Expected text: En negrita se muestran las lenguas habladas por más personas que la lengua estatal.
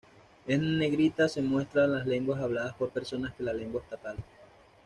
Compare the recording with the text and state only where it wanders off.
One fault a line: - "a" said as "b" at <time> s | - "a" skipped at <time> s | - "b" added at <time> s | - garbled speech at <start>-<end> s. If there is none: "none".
- "más" skipped at 2.9 s